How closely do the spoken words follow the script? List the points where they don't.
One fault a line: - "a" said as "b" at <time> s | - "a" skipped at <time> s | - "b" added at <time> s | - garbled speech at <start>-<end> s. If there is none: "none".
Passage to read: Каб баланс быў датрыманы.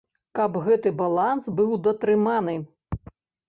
- "гэты" added at 0.7 s